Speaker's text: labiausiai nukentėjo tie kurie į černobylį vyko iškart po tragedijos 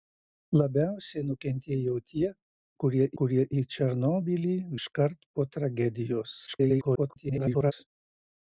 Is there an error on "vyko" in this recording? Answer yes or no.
yes